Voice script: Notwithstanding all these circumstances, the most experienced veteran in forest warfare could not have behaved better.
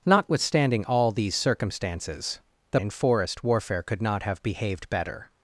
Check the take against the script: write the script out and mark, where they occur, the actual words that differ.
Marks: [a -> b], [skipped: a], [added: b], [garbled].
Notwithstanding all these circumstances, the [skipped: most experienced veteran] in forest warfare could not have behaved better.